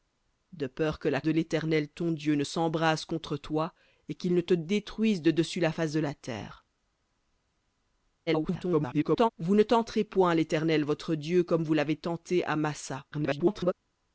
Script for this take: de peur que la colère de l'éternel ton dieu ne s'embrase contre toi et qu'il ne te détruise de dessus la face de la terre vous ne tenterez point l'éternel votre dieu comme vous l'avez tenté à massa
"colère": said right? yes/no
no